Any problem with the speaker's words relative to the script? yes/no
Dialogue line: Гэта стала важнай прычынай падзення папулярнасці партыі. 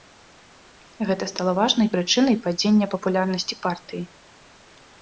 no